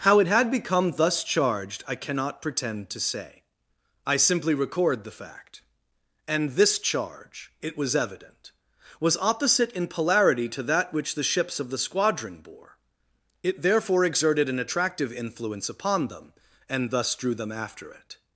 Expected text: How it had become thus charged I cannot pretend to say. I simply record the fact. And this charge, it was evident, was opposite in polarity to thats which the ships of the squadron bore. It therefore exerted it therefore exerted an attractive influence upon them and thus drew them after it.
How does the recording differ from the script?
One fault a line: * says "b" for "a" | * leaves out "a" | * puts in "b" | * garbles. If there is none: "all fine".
* says "that" for "thats"
* leaves out "it therefore exerted"